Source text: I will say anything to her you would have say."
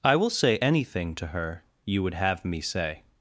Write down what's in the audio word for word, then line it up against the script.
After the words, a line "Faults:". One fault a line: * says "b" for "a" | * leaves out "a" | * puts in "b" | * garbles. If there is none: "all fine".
I will say anything to her you would have me say."
Faults:
* puts in "me"